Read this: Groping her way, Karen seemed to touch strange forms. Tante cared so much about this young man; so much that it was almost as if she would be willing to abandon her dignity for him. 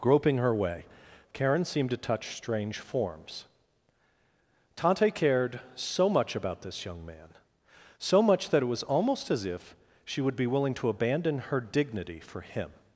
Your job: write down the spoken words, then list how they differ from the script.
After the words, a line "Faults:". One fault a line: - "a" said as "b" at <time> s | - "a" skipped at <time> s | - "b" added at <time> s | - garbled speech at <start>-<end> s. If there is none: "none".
Groping her way, Karen seemed to touch strange forms. Tante cared so much about this young man; so much that it was almost as if she would be willing to abandon her dignity for him.
Faults:
none